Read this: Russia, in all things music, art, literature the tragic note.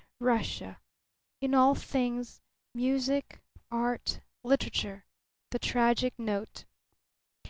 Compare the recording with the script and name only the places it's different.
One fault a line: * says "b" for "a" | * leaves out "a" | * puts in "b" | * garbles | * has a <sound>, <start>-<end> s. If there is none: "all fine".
all fine